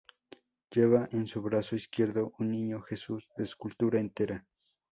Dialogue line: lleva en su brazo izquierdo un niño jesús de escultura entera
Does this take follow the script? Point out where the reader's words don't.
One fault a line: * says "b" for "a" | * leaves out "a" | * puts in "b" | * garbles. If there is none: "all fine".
all fine